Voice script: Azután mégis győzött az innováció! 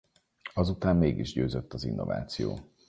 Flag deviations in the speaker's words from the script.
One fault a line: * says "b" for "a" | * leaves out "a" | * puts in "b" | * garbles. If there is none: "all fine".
all fine